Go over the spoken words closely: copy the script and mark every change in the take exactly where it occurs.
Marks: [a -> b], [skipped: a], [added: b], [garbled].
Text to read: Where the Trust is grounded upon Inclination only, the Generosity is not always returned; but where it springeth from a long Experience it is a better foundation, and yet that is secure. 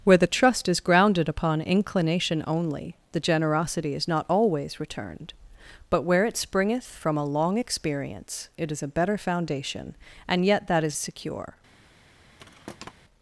Where the Trust is grounded upon Inclination only, the Generosity is not always returned; but where it springeth from a long Experience it is a better foundation, and yet that is secure.